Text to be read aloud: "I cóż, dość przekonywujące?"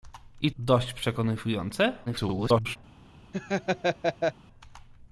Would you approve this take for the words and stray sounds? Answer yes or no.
no